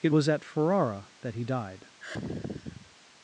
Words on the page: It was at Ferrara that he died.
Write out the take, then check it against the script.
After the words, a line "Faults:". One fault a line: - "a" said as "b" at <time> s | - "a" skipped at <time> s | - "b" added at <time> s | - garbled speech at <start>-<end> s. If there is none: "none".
It was at Ferrara that he died.
Faults:
none